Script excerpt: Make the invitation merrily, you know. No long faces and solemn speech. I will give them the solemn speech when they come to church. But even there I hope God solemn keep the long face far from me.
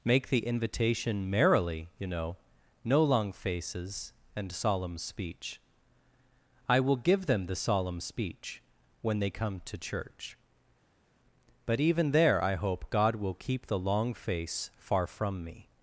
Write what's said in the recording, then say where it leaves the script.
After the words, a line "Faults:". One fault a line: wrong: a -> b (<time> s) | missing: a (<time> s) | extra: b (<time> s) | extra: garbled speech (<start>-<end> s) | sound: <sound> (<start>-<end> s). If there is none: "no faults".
Make the invitation merrily, you know. No long faces and solemn speech. I will give them the solemn speech when they come to church. But even there I hope God will keep the long face far from me.
Faults:
wrong: solemn -> will (13.2 s)